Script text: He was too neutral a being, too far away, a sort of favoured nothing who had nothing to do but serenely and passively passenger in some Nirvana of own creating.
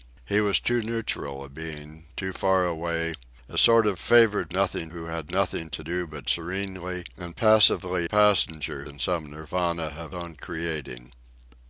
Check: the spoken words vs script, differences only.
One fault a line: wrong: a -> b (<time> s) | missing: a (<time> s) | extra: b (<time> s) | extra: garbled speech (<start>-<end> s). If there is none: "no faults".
no faults